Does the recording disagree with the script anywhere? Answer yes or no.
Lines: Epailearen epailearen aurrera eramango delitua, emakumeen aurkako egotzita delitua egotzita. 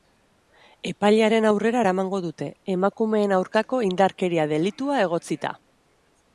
yes